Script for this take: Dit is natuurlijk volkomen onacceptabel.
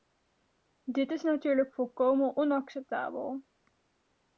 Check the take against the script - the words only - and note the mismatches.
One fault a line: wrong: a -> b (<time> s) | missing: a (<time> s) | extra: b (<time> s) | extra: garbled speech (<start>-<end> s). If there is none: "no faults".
no faults